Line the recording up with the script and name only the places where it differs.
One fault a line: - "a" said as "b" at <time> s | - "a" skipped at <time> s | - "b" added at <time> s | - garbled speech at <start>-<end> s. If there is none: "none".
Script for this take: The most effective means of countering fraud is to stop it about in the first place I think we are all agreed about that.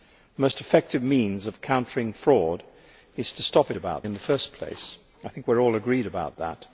none